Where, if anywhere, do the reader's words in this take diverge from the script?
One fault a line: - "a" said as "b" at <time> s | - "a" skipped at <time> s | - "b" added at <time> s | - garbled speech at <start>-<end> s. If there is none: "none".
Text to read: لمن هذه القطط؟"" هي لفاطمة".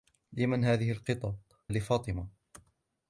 - "هي" skipped at 1.4 s